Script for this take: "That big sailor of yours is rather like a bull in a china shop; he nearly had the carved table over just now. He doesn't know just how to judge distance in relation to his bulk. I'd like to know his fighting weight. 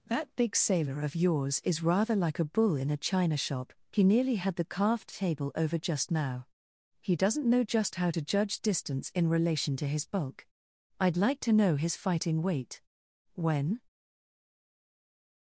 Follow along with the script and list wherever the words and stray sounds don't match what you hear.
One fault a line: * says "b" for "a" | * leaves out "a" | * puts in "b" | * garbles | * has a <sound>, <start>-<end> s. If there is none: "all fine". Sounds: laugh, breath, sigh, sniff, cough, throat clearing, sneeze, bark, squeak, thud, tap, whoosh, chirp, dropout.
* puts in "When"